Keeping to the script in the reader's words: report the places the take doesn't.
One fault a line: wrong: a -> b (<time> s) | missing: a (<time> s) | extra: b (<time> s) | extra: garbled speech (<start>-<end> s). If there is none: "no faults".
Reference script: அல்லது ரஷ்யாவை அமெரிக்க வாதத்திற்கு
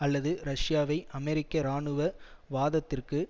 extra: இராணுவ (1.6 s)